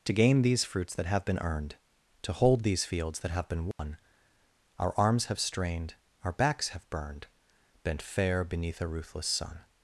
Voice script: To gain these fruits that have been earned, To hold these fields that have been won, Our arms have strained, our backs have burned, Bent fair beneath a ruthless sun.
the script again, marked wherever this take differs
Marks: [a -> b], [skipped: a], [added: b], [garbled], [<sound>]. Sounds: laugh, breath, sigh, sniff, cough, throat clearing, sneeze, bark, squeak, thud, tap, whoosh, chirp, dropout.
To gain these fruits that have been earned, To hold these fields that have been won, [dropout] Our arms have strained, our backs have burned, Bent fair beneath a ruthless sun.